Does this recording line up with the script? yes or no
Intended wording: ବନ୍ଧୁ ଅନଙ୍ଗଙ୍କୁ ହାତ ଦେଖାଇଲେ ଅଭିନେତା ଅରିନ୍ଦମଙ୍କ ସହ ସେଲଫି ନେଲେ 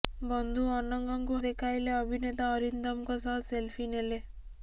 no